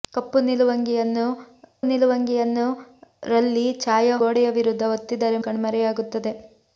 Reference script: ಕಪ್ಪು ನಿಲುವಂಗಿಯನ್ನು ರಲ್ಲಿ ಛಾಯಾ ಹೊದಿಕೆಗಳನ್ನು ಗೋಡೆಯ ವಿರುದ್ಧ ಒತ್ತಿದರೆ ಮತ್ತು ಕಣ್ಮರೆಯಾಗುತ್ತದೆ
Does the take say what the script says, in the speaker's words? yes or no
no